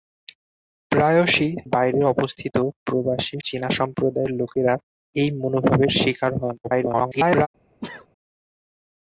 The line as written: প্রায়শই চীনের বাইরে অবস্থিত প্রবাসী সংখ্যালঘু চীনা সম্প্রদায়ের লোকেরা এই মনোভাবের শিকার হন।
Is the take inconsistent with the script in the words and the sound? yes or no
yes